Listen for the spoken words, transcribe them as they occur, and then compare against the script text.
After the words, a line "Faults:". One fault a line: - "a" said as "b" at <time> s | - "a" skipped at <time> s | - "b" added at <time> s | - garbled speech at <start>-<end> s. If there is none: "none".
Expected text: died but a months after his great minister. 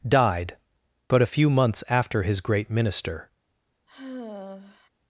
died but a few months after his great minister.
Faults:
- "few" added at 1.3 s